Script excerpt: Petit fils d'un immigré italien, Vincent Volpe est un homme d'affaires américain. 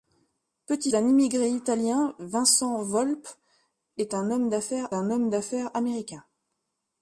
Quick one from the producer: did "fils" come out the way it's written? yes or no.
no